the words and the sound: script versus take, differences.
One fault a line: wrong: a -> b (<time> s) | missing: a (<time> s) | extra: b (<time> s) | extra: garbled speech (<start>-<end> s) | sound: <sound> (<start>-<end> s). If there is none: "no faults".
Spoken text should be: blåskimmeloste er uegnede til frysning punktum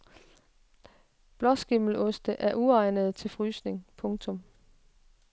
no faults